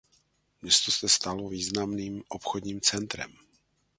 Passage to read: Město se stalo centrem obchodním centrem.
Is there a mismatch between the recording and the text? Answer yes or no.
yes